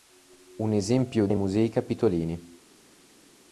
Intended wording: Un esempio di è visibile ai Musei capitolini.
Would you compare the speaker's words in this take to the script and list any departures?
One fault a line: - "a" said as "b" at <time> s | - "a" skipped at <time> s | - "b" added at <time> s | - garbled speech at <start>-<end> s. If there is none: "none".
- "di è visibile" skipped at 1.3 s